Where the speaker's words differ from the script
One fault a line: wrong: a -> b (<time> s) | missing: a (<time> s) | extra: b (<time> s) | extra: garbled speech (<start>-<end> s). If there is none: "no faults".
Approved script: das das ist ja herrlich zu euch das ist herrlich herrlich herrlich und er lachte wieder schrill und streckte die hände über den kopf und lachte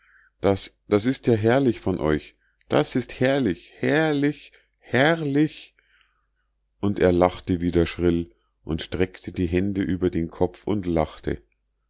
wrong: zu -> von (1.8 s)